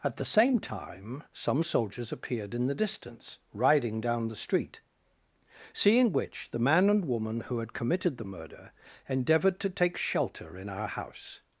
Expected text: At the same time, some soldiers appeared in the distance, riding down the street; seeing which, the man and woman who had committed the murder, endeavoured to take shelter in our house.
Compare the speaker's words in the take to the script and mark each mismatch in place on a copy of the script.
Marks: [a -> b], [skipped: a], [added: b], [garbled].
At the same time, some soldiers appeared in the distance, riding down the street; seeing which, the man and woman who had committed the murder, endeavoured to take shelter in our house.